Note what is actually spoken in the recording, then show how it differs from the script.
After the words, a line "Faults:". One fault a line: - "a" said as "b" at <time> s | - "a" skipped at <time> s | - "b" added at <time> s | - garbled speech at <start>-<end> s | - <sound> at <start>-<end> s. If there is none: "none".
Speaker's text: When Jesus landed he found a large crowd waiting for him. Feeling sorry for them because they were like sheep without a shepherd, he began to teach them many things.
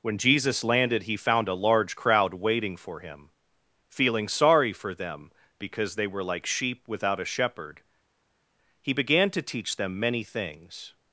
When Jesus landed he found a large crowd waiting for him. Feeling sorry for them because they were like sheep without a shepherd, he began to teach them many things.
Faults:
none